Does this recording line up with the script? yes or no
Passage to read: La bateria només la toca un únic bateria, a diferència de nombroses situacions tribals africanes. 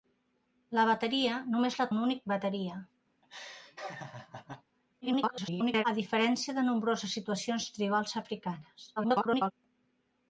no